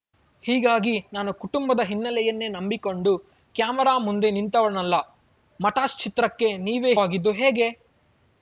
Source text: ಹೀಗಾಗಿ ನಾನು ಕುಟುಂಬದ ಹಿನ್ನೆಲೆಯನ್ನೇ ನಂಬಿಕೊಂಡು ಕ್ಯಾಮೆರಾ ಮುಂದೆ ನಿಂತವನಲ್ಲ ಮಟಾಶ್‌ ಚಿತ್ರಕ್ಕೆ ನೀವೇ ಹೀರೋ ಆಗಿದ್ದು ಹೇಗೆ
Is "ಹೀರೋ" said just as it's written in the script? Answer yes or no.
no